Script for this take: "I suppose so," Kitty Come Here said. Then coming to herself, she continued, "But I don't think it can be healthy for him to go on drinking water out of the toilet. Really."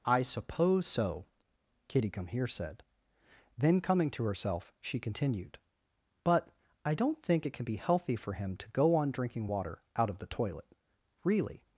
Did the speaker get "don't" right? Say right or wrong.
right